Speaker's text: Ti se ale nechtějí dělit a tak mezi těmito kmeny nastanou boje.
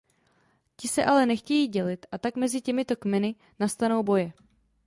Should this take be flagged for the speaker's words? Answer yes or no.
no